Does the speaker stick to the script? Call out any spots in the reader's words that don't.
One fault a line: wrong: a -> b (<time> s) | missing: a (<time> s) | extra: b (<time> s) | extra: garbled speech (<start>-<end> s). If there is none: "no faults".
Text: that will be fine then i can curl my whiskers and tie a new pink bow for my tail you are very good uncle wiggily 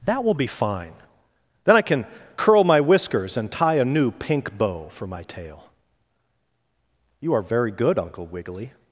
no faults